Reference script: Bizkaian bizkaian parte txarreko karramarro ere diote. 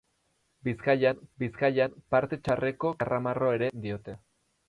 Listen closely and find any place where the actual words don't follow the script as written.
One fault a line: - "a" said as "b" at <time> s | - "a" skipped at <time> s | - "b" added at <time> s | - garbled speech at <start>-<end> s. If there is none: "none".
none